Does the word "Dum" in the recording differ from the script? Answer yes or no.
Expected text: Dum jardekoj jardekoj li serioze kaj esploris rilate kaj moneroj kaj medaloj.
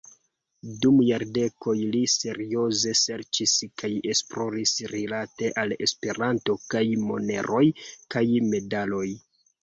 no